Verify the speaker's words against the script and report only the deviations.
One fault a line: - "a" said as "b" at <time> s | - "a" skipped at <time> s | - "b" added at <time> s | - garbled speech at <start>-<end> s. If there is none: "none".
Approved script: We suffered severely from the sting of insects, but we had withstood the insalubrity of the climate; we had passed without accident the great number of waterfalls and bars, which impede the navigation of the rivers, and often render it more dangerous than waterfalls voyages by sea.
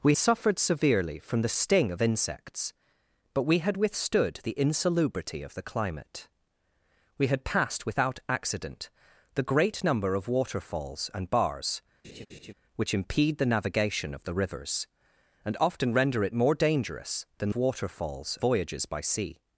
none